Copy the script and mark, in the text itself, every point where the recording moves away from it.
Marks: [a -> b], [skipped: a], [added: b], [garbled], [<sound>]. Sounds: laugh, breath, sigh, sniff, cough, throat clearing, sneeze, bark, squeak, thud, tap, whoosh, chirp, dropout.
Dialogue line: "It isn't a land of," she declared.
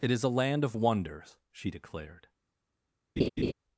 "It [isn't -> is] a land of," [added: wonders] she declared. [laugh]